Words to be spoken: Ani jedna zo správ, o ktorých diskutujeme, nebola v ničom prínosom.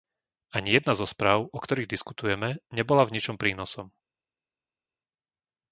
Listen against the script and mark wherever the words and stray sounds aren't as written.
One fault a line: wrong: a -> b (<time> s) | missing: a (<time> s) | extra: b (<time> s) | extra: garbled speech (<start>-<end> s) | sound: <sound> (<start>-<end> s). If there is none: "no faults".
no faults